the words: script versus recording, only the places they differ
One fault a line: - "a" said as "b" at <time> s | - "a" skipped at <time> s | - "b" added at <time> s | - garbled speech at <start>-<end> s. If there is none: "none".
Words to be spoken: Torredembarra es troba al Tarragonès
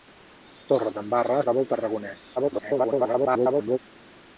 - "es" skipped at 1.4 s
- garbled speech at 2.4-3.8 s